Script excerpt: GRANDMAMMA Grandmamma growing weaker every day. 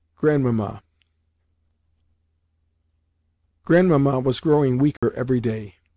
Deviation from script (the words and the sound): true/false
true